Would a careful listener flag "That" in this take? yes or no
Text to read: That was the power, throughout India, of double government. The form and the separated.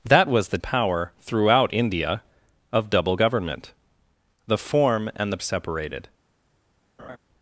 no